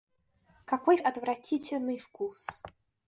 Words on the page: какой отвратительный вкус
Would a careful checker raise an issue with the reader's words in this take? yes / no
no